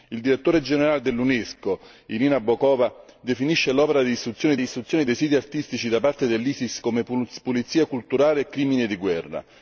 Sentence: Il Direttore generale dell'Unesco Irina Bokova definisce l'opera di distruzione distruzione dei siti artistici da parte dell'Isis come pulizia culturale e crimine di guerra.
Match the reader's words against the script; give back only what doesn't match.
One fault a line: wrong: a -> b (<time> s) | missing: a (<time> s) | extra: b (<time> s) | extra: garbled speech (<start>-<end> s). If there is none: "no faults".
no faults